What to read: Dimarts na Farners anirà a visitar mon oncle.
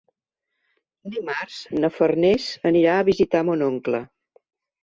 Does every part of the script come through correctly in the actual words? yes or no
yes